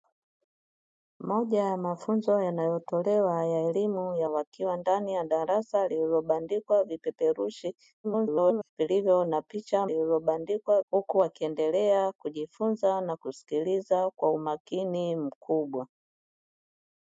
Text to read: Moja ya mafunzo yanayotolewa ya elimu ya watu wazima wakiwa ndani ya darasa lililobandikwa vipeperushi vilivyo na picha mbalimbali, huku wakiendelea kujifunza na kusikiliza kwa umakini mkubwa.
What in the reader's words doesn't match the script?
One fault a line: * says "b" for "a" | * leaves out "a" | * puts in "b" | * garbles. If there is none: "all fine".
* leaves out "watu wazima"
* garbles
* says "lililobandikwa" for "mbalimbali"